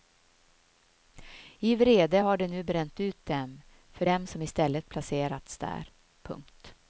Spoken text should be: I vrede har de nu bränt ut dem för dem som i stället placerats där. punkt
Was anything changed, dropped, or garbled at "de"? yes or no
no